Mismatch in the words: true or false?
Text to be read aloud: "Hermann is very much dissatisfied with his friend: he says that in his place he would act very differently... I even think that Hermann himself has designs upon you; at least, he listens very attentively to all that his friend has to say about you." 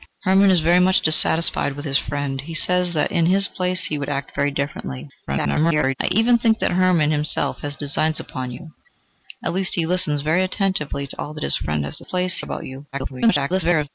true